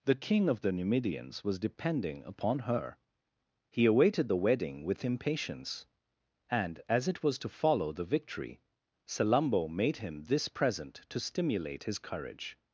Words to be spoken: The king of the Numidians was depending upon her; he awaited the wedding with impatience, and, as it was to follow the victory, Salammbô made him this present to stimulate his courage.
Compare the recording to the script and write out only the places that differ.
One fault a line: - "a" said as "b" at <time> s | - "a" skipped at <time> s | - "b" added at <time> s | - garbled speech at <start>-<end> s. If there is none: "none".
none